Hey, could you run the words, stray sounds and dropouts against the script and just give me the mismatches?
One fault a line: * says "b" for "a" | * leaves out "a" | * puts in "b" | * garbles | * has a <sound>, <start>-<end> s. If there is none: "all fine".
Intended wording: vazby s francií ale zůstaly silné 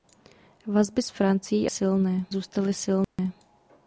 * says "silné" for "ale"
* has a dropout, 3.0-3.2 s